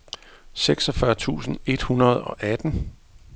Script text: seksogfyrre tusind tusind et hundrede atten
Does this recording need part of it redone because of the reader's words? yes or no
yes